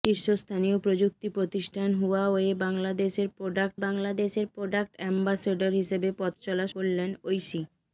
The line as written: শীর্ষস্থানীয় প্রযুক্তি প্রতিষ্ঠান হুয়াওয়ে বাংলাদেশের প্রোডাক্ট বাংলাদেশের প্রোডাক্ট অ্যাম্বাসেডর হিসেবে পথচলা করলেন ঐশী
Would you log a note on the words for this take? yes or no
no